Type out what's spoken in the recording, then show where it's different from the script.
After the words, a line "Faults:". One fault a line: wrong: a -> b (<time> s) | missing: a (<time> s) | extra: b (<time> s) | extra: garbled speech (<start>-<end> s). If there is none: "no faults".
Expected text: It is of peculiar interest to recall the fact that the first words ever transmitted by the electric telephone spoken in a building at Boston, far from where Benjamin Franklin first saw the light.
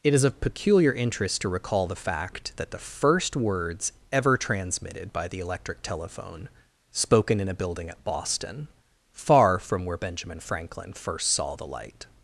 It is of peculiar interest to recall the fact that the first words ever transmitted by the electric telephone spoken in a building at Boston, far from where Benjamin Franklin first saw the light.
Faults:
no faults